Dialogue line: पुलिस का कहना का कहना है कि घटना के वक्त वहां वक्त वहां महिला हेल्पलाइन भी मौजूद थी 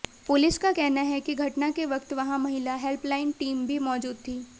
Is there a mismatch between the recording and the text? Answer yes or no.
yes